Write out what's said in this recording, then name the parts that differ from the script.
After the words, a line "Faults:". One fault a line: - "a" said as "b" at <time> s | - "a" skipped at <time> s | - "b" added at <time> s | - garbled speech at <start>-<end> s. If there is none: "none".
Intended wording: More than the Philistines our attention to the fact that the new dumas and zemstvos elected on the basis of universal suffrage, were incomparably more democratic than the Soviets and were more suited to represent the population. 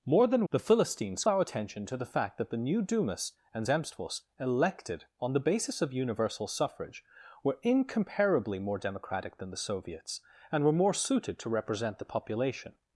More than the Philistines our attention to the fact that the new dumas and zemstvos elected on the basis of universal suffrage, were incomparably more democratic than the Soviets and were more suited to represent the population.
Faults:
none